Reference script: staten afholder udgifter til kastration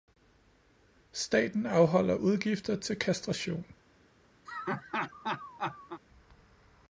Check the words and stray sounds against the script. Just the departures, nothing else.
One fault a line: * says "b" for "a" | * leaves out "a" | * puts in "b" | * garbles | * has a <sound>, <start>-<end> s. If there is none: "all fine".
* has a laugh, 4.5-6.0 s